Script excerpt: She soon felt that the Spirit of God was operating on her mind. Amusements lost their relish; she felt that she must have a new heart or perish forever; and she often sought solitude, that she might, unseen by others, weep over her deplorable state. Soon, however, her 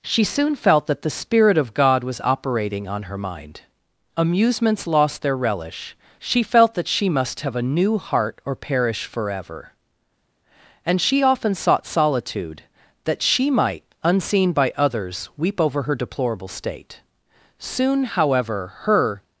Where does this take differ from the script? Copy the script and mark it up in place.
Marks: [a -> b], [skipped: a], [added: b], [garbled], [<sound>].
She soon felt that the Spirit of God was operating on her mind. Amusements lost their relish; she felt that she must have a new heart or perish forever; and she often sought solitude, that she might, unseen by others, weep over her deplorable state. Soon, however, her